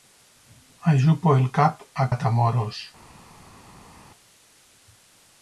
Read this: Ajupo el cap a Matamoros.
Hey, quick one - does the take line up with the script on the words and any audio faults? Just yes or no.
yes